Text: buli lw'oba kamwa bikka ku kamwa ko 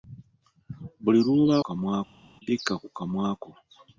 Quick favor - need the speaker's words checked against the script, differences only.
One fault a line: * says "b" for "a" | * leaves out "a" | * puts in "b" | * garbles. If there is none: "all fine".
all fine